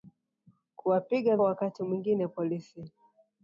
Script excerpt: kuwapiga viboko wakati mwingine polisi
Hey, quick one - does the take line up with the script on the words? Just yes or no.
no